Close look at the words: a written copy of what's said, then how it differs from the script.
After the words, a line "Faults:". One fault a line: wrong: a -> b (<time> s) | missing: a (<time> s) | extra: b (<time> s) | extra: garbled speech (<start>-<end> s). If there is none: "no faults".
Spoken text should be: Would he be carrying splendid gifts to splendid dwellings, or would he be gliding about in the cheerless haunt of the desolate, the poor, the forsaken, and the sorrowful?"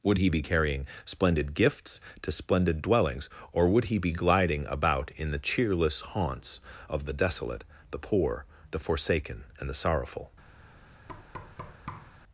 Would he be carrying splendid gifts to splendid dwellings, or would he be gliding about in the cheerless haunts of the desolate, the poor, the forsaken, and the sorrowful?"
Faults:
wrong: haunt -> haunts (6.0 s)